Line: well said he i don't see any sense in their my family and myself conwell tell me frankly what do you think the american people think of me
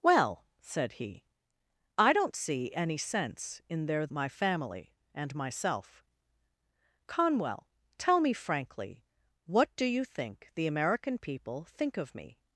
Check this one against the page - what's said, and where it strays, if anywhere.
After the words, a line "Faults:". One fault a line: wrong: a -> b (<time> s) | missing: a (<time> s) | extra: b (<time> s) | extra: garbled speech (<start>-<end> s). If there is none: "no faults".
well said he i don't see any sense in their my family and myself conwell tell me frankly what do you think the american people think of me
Faults:
no faults